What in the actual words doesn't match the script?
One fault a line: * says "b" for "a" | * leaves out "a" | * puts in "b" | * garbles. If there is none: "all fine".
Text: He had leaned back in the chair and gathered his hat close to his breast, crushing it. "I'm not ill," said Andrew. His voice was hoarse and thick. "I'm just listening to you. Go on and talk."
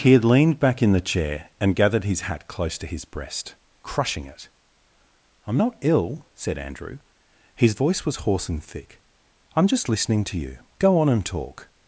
all fine